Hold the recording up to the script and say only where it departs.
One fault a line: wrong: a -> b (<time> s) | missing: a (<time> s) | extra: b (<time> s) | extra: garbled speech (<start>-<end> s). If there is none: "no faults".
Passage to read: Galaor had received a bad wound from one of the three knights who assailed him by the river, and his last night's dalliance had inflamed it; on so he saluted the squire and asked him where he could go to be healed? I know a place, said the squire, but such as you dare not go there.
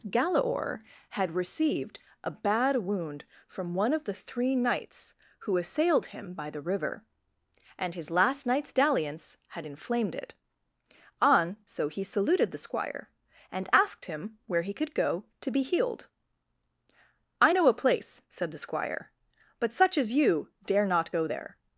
no faults